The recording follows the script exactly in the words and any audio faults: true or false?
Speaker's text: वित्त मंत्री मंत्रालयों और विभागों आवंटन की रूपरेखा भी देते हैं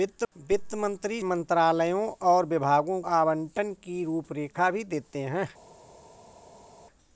true